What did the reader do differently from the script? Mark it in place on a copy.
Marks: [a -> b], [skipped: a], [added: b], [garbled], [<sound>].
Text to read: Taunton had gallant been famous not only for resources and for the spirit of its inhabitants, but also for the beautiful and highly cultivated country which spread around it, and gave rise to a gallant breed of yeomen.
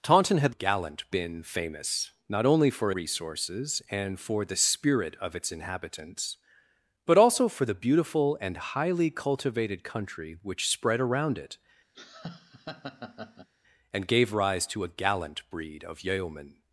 Taunton had gallant been famous not only for resources and for the spirit of its inhabitants, but also for the beautiful and highly cultivated country which spread around it, [laugh] and gave rise to a gallant breed of yeomen.